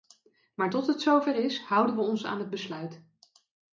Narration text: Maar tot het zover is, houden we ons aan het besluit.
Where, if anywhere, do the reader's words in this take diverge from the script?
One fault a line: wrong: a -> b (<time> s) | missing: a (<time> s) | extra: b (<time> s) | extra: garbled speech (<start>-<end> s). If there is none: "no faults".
no faults